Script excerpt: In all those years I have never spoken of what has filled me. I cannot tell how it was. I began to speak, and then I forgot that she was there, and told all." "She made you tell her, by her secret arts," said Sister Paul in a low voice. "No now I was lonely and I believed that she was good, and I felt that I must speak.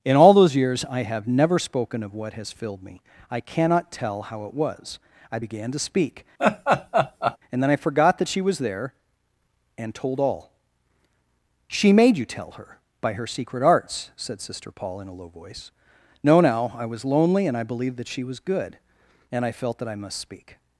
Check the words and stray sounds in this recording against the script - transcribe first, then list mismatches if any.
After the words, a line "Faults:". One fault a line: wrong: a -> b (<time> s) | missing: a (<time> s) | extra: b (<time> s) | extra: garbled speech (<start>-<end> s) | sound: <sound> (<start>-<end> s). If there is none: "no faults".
In all those years I have never spoken of what has filled me. I cannot tell how it was. I began to speak, and then I forgot that she was there, and told all." "She made you tell her, by her secret arts," said Sister Paul in a low voice. "No now I was lonely and I believed that she was good, and I felt that I must speak.
Faults:
sound: laugh (6.4-7.4 s)